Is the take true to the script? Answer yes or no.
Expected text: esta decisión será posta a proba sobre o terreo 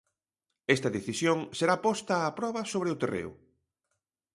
yes